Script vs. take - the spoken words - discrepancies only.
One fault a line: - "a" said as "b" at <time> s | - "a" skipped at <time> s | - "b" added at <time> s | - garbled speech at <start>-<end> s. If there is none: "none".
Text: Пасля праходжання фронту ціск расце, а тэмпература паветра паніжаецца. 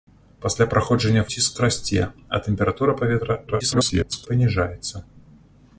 - "фронту" skipped at 1.2 s
- garbled speech at 3.5-4.3 s